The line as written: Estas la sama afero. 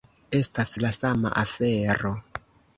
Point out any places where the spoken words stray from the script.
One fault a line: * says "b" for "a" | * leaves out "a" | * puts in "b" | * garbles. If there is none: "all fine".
all fine